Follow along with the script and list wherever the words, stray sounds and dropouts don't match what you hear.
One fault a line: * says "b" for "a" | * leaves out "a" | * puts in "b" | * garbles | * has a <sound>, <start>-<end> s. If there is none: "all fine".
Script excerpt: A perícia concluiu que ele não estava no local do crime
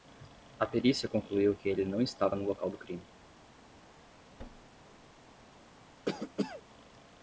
* has a thud, 4.4-5.4 s
* has a cough, 6.1-6.6 s